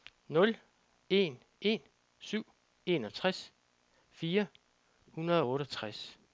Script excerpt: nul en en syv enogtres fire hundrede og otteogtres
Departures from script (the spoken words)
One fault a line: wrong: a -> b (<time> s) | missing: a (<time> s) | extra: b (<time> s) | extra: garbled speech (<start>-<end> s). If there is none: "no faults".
no faults